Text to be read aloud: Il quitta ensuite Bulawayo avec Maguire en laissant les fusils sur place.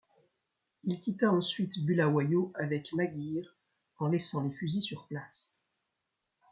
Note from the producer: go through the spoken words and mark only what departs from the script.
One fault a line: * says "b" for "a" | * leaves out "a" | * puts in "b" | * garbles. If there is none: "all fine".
all fine